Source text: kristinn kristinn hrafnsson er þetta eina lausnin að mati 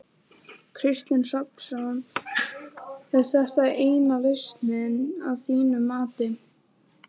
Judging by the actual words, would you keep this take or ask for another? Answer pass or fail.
fail